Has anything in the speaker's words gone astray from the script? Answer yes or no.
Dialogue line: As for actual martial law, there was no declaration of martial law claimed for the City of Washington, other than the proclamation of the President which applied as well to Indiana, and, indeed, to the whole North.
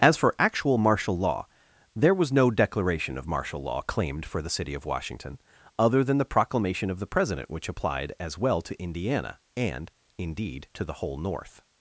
no